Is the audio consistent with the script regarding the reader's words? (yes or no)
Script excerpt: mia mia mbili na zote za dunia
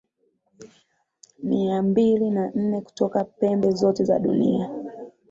no